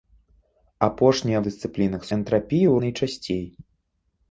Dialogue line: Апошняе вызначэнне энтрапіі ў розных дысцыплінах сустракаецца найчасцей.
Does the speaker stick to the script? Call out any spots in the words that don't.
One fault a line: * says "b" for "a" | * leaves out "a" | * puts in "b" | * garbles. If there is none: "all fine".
* says "дысцыплінах" for "вызначэнне"
* leaves out "розных дысцыплінах сустракаецца"